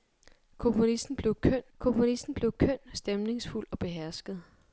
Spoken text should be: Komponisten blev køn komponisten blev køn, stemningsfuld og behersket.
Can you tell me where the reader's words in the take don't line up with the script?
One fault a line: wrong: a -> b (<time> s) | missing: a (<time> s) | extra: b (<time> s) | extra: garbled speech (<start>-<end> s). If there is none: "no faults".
no faults